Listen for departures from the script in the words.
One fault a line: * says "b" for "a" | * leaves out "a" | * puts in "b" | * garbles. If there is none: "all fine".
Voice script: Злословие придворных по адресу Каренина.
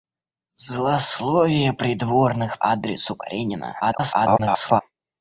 * leaves out "по"
* garbles